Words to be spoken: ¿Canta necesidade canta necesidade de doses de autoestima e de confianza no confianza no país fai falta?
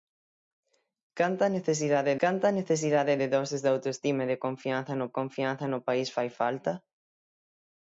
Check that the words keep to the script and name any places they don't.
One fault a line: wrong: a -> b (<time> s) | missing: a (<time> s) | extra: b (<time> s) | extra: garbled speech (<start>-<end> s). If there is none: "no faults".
no faults